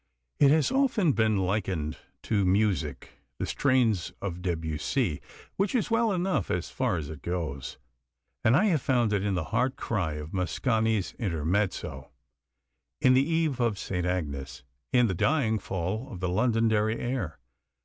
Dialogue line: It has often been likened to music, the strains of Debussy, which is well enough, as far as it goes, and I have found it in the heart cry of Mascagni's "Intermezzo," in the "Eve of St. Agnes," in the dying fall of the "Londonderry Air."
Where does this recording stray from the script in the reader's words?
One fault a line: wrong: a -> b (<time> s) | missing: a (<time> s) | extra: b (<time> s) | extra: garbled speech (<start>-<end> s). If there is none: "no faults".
no faults